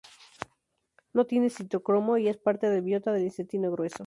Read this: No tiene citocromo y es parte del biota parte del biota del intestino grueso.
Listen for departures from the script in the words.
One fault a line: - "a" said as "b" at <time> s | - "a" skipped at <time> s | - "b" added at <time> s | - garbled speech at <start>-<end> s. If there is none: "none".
- "parte del biota" skipped at 3.1 s